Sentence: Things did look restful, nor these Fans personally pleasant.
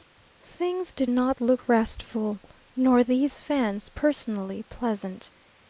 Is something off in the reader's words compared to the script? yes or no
yes